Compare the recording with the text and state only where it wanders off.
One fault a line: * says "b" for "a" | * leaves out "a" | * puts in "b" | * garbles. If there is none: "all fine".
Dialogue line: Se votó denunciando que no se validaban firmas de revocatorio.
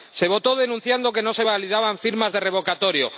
all fine